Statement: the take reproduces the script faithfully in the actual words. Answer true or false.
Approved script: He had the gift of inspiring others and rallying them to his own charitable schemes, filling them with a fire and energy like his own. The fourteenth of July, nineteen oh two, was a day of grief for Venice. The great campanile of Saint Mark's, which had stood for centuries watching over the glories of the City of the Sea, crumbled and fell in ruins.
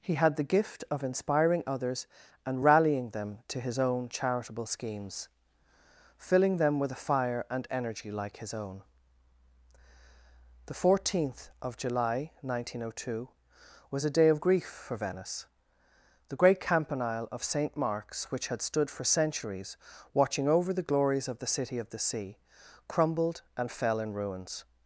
true